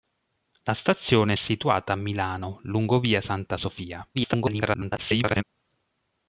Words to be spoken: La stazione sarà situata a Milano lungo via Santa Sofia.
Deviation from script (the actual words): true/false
true